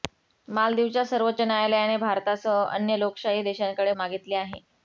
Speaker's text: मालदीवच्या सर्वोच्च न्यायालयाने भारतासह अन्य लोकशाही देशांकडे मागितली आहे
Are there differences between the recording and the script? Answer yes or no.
no